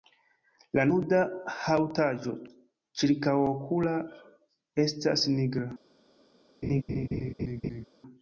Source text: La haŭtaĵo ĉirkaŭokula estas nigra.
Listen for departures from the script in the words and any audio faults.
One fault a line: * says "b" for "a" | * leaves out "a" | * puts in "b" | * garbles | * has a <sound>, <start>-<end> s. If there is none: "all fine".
* puts in "nuda"
* has a laugh, 6.6-7.9 s